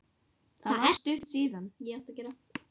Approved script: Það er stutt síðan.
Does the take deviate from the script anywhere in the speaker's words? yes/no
no